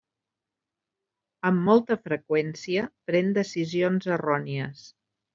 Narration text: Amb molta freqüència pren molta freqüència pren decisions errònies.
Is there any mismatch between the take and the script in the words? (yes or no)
yes